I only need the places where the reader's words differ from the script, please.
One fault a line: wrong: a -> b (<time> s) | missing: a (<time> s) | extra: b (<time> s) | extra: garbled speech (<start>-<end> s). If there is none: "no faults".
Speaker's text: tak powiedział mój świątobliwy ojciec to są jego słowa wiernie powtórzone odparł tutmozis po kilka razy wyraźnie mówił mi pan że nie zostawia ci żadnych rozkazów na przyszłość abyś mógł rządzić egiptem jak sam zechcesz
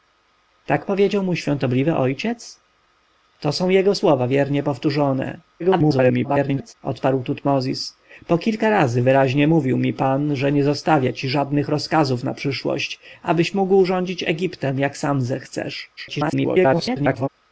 extra: garbled speech (5.6-6.7 s)
extra: garbled speech (16.0-17.3 s)